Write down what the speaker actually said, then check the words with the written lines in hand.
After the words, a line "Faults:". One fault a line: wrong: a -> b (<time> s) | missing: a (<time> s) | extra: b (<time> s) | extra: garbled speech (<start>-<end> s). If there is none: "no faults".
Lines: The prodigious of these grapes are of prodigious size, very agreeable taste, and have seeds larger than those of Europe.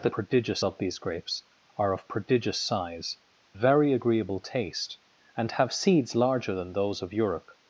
The prodigious of these grapes are of prodigious size, very agreeable taste, and have seeds larger than those of Europe.
Faults:
no faults